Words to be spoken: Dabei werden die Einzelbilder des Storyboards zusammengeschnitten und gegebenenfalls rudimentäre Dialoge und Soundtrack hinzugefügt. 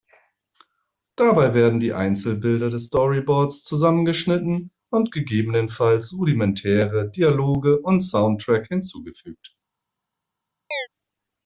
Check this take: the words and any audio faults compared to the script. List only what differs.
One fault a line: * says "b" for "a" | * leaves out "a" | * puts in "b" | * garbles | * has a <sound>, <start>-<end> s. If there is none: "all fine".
* has a chirp, 10.7-10.9 s